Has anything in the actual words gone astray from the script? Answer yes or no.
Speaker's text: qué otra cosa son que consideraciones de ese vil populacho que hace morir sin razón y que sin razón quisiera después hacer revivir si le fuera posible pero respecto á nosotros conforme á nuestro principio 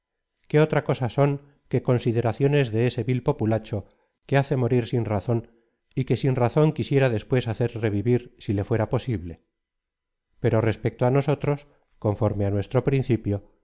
no